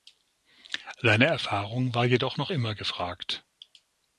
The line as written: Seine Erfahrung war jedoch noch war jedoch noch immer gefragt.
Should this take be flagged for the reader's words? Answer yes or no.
yes